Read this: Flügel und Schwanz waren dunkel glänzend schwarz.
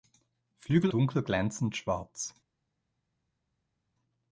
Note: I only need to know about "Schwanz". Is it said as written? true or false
false